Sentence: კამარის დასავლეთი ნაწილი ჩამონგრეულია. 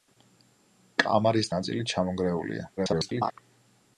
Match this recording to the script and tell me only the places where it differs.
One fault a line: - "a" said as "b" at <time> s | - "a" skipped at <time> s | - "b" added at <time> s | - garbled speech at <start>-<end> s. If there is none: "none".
- "დასავლეთი" skipped at 1.5 s
- garbled speech at 2.8-3.3 s